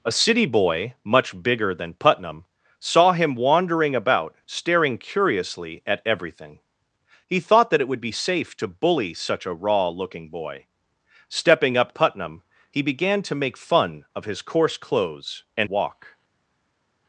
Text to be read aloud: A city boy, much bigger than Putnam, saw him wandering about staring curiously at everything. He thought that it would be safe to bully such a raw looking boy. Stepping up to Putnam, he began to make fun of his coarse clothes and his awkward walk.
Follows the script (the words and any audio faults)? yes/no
no